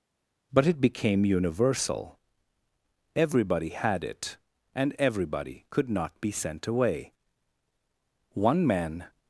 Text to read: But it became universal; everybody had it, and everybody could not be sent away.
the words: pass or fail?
fail